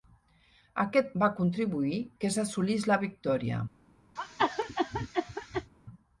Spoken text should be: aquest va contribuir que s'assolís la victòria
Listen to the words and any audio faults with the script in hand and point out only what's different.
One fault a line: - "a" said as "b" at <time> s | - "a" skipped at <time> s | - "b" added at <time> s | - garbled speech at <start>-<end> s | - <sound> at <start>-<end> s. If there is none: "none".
- cough at 4.2-5.7 s